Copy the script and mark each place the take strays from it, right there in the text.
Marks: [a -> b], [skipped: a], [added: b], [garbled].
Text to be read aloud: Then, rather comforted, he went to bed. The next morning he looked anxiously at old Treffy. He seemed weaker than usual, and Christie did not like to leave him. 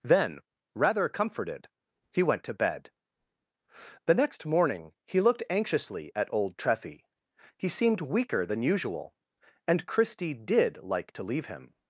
Then, rather comforted, he went to bed. The next morning he looked anxiously at old Treffy. He seemed weaker than usual, and Christie did [skipped: not] like to leave him.